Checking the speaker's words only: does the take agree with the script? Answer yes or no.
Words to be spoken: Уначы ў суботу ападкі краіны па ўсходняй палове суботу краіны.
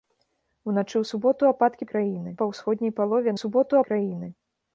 yes